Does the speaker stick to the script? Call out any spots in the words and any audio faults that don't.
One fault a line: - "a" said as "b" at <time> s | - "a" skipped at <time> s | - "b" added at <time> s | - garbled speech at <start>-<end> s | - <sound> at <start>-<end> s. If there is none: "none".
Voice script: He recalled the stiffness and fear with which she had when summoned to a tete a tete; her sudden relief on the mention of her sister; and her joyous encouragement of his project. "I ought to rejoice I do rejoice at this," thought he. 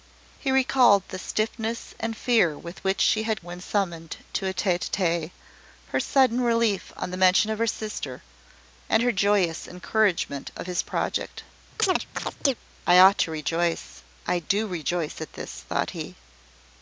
- chirp at 11.8-12.5 s